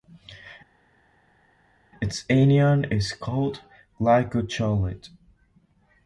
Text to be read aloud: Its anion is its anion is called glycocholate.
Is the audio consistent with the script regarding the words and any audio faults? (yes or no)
no